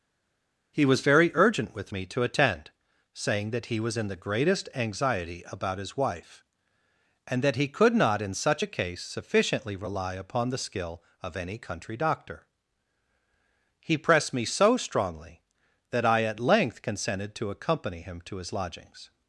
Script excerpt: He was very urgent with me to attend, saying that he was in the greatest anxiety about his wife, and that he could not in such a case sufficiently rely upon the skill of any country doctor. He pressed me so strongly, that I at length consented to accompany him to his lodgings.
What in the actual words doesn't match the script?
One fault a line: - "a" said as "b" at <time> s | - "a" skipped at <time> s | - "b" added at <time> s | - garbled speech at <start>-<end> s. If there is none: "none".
none